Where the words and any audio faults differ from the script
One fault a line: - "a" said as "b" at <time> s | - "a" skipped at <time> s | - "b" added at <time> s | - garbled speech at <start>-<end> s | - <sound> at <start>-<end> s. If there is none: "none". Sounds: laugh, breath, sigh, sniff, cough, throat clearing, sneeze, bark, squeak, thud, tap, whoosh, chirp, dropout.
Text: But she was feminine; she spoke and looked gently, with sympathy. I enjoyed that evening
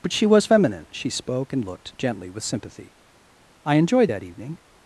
none